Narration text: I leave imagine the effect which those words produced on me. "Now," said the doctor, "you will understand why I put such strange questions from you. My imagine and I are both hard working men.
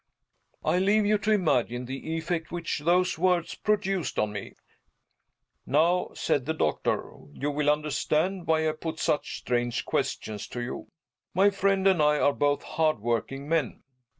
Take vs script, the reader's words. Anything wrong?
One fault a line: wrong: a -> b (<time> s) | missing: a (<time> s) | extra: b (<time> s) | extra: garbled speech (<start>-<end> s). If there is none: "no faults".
extra: you to (1.1 s)
wrong: from -> to (10.5 s)
wrong: imagine -> friend (11.5 s)